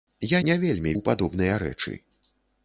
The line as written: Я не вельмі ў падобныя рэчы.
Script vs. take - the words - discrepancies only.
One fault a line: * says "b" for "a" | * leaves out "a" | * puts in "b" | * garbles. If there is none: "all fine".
all fine